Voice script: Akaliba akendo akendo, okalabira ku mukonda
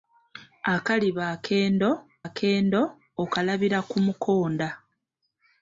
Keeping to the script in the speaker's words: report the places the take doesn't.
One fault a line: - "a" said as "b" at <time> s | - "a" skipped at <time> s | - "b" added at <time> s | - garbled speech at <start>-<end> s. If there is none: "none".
none